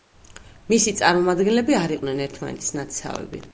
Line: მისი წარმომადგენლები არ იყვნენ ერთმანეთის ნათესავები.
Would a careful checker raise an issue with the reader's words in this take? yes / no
no